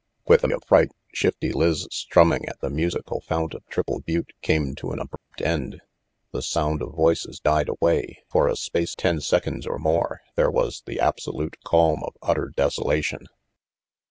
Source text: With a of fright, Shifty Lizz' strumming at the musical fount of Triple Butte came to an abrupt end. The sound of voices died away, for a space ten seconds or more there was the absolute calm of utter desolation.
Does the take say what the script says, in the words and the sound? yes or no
no